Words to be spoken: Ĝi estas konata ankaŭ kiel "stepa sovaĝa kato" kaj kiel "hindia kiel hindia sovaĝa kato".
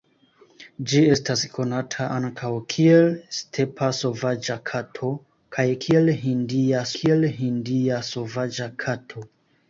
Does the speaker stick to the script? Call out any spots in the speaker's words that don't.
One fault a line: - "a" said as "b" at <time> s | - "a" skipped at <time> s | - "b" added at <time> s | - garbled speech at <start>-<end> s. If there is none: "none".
none